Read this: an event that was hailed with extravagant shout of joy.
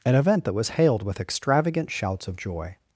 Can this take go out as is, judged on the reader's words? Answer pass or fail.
fail